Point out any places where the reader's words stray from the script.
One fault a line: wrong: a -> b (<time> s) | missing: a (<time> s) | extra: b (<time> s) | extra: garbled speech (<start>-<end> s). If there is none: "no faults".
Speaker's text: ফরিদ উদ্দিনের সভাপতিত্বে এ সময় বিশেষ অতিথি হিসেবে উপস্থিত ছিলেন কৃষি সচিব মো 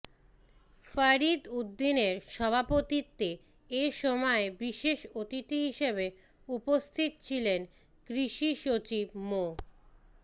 no faults